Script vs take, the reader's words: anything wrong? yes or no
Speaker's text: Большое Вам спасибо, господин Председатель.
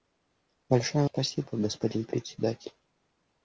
yes